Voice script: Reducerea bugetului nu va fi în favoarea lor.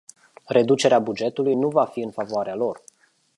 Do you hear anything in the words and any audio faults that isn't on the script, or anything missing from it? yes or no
no